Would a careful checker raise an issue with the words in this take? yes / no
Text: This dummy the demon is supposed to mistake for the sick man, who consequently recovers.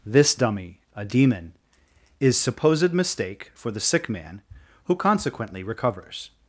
yes